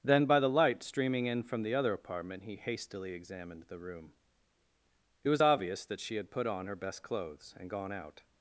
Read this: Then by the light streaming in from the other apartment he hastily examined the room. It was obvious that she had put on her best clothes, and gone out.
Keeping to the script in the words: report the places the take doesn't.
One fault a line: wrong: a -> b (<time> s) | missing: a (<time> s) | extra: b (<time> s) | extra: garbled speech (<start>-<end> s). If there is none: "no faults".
no faults